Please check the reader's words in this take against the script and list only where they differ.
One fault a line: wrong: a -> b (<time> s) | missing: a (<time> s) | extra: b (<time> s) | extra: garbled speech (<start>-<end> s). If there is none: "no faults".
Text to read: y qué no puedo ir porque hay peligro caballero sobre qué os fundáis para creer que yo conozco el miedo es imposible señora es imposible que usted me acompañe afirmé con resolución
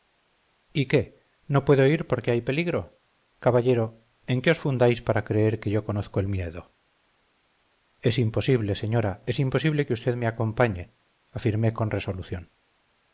wrong: sobre -> en (4.2 s)